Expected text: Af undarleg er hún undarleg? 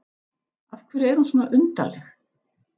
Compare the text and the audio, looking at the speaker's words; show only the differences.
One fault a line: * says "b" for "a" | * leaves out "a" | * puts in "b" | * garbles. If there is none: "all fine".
* says "hverju" for "undarleg"
* puts in "svona"